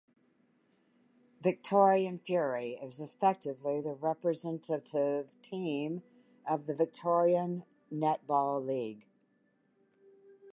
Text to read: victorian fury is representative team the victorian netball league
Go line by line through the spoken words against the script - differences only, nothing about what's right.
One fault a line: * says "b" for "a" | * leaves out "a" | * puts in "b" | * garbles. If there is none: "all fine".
* puts in "effectively the"
* puts in "of"